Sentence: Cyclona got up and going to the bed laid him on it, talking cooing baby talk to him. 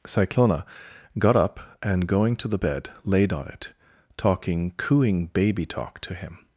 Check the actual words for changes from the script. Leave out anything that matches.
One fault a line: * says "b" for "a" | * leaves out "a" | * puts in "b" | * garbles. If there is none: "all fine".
* leaves out "him"